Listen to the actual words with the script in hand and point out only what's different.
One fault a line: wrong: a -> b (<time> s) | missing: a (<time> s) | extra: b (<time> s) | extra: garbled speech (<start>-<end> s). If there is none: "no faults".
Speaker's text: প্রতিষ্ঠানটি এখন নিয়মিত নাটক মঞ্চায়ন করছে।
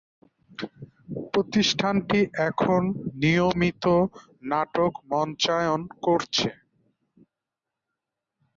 no faults